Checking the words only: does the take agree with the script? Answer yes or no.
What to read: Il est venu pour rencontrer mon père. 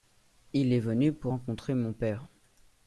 yes